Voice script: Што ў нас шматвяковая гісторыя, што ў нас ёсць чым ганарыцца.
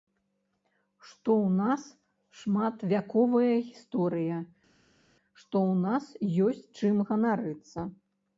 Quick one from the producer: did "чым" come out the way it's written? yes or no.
yes